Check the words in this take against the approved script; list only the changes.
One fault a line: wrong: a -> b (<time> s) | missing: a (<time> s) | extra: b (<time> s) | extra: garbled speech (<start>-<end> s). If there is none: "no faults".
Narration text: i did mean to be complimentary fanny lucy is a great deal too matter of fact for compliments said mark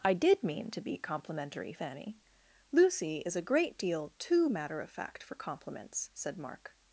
no faults